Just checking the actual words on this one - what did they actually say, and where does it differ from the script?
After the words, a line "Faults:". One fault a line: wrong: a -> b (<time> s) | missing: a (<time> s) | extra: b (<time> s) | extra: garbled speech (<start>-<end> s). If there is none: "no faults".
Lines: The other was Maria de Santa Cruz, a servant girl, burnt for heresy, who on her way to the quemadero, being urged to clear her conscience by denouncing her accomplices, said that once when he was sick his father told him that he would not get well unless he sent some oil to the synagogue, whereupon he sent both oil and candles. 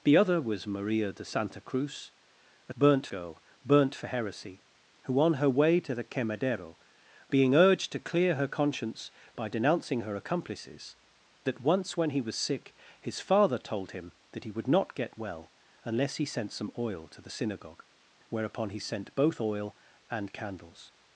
The other was Maria de Santa Cruz, a burnt girl, burnt for heresy, who on her way to the quemadero, being urged to clear her conscience by denouncing her accomplices, that once when he was sick his father told him that he would not get well unless he sent some oil to the synagogue, whereupon he sent both oil and candles.
Faults:
wrong: servant -> burnt (2.8 s)
missing: said (11.0 s)